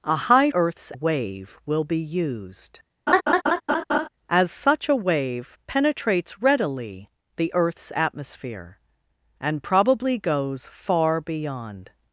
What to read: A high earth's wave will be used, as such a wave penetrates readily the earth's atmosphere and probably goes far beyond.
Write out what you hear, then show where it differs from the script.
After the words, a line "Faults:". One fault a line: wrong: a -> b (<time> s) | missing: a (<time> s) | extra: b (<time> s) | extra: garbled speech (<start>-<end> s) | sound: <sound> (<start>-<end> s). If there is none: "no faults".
A high earth's wave will be used, as such a wave penetrates readily the earth's atmosphere and probably goes far beyond.
Faults:
sound: laugh (3.1-4.1 s)